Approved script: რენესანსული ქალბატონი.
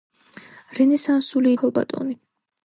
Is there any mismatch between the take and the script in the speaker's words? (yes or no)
no